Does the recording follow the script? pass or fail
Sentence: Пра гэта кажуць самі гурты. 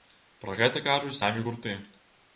pass